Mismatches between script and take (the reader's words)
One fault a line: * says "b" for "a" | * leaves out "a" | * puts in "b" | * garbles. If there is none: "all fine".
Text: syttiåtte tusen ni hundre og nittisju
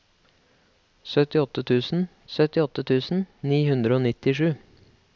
* puts in "syttiåtte tusen"